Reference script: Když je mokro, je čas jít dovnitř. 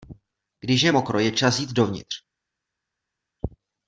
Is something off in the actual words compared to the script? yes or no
no